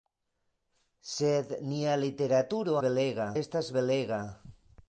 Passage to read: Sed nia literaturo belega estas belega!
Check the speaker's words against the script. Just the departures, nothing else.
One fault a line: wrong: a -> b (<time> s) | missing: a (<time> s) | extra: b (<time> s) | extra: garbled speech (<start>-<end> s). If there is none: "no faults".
no faults